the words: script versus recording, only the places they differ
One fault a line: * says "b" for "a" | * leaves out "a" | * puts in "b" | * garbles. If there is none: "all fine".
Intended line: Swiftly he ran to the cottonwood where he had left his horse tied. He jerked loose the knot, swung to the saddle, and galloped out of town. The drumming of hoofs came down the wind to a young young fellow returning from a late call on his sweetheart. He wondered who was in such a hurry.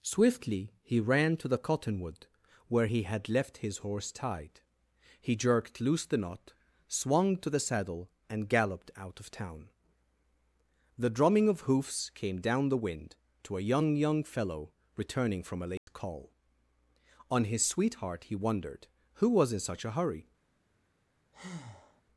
all fine